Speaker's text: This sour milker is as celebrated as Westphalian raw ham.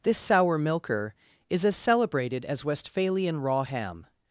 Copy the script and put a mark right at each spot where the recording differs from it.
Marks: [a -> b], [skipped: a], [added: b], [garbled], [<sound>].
This sour milker is as celebrated as Westphalian raw ham.